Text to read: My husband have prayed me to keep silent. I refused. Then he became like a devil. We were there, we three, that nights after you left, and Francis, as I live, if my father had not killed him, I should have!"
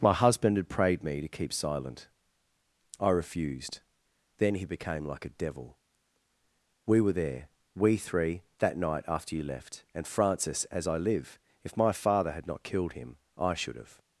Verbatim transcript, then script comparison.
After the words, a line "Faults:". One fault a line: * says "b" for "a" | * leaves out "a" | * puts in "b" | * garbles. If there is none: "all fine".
My husband had prayed me to keep silent. I refused. Then he became like a devil. We were there, we three, that night after you left, and Francis, as I live, if my father had not killed him, I should have!"
Faults:
* says "had" for "have"
* says "night" for "nights"